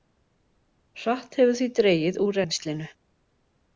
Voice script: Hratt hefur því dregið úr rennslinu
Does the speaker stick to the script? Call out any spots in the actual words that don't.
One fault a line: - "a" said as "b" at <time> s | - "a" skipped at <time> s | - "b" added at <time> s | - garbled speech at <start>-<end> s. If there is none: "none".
none